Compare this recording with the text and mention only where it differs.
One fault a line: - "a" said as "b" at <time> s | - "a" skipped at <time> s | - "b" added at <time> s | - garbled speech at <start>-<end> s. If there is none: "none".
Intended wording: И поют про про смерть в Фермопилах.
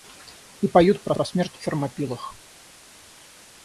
none